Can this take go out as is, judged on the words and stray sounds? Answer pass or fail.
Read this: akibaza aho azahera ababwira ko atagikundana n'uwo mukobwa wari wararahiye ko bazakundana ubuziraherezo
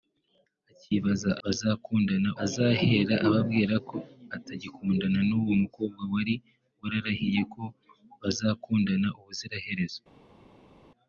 fail